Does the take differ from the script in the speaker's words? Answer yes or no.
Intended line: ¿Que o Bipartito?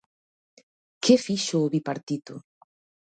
yes